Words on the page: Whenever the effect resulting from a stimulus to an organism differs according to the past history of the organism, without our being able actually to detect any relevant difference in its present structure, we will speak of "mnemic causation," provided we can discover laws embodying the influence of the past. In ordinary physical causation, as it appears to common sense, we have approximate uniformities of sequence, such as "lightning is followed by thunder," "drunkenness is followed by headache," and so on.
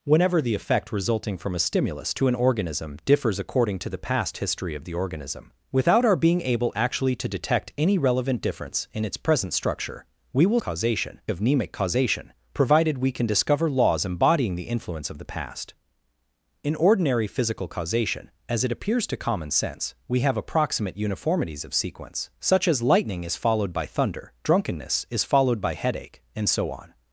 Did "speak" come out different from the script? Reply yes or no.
yes